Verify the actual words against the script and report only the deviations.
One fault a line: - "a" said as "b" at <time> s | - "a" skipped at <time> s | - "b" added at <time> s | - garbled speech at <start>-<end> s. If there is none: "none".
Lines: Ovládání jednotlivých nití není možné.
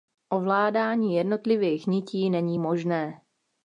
none